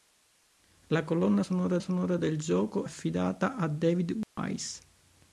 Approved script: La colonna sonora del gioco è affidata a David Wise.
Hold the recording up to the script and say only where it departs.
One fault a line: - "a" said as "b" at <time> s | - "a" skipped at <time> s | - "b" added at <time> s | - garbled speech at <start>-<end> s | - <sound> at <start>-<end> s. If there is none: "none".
- "sonora" added at 1.8 s
- "è" skipped at 2.9 s
- dropout at 4.2-4.4 s